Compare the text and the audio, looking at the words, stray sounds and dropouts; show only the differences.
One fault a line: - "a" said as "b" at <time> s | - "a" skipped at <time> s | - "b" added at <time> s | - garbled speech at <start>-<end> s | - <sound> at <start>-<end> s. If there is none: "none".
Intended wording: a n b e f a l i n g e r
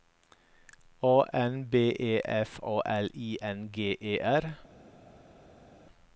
none